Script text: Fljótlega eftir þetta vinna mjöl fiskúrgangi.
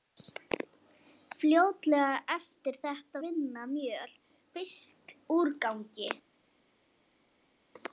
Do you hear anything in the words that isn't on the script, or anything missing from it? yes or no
no